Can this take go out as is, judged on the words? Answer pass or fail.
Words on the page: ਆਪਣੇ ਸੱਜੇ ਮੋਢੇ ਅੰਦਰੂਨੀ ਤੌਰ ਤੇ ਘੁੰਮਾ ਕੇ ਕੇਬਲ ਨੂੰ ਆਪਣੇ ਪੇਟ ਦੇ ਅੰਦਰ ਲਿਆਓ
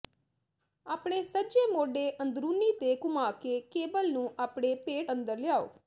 fail